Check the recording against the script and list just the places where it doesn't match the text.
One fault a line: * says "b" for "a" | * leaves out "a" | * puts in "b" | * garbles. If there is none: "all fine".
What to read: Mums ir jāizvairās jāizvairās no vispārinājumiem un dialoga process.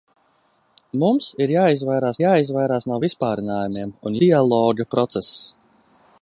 all fine